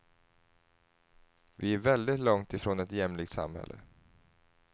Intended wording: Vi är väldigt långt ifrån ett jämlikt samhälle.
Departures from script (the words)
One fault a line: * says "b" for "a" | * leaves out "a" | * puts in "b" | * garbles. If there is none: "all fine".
all fine